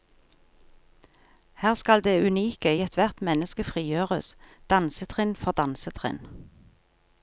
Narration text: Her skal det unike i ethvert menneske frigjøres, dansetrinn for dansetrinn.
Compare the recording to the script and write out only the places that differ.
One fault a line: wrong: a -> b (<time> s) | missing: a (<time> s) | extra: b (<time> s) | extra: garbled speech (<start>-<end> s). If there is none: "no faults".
no faults